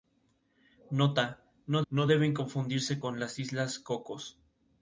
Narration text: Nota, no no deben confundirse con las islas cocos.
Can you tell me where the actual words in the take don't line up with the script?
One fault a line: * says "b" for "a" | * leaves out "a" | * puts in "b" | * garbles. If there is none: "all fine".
all fine